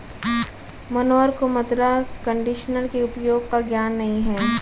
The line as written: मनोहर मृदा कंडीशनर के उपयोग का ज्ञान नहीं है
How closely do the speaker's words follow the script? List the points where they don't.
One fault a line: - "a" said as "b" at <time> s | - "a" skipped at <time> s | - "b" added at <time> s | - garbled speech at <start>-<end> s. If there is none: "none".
- "को" added at 1.3 s